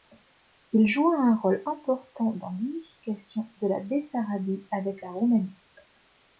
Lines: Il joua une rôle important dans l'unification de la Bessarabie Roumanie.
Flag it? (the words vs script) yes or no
yes